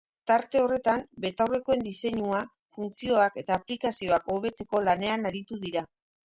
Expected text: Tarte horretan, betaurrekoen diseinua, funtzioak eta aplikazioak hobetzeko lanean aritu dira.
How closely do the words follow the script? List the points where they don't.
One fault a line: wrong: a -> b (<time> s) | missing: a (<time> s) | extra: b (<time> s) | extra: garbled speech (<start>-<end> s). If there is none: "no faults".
no faults